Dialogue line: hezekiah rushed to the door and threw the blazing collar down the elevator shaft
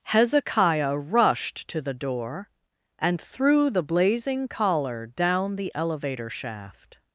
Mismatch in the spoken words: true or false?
false